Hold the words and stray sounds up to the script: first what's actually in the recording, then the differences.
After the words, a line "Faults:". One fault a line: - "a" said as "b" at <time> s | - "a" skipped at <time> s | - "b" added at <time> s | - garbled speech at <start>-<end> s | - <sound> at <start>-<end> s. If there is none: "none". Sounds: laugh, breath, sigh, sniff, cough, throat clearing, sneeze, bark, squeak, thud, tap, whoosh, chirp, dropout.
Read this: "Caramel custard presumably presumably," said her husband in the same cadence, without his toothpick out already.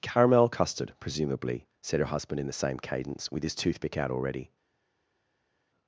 "Caramel custard presumably," said her husband in the same cadence, with his toothpick out already.
Faults:
- "presumably" skipped at 1.7 s
- "without" said as "with" at 3.3 s